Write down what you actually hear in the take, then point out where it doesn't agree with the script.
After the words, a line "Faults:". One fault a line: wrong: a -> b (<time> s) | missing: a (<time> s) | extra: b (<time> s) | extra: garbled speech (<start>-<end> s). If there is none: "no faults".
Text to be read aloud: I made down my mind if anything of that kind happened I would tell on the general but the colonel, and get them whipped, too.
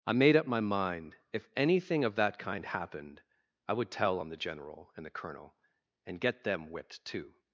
I made up my mind if anything of that kind happened I would tell on the general and the colonel, and get them whipped, too.
Faults:
wrong: down -> up (0.3 s)
wrong: but -> and (5.0 s)